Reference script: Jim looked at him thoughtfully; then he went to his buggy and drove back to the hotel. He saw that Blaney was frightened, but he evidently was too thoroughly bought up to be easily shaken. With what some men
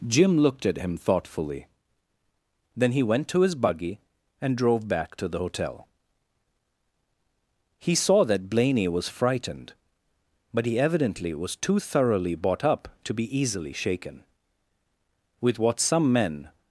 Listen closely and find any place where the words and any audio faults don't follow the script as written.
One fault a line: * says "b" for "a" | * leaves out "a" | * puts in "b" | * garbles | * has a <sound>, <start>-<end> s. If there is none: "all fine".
all fine